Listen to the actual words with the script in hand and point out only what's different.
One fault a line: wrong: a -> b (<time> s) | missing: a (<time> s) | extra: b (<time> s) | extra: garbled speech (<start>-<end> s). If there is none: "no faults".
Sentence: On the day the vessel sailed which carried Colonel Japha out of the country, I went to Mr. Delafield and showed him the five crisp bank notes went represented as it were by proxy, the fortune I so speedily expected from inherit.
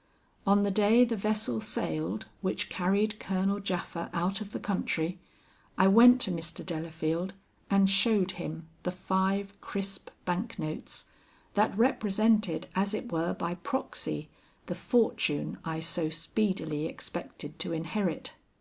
wrong: went -> that (11.5 s)
wrong: from -> to (17.6 s)